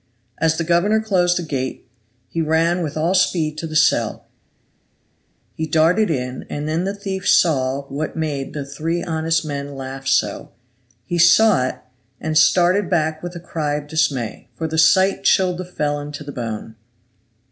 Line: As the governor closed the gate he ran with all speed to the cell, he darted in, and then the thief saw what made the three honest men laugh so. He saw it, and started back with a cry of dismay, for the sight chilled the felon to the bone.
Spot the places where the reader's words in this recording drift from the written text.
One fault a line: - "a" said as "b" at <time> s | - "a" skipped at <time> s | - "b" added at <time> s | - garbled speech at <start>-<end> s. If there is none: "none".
none